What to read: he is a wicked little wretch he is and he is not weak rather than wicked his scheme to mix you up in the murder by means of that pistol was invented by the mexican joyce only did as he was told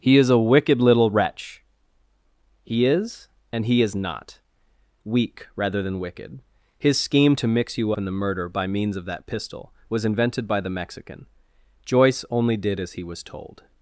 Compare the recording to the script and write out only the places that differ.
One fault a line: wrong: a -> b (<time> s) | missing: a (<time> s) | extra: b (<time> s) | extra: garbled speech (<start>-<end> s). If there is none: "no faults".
missing: up (7.9 s)